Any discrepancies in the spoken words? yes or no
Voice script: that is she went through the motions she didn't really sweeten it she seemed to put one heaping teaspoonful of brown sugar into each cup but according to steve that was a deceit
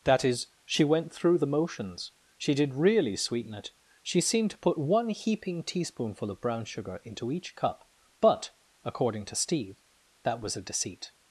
yes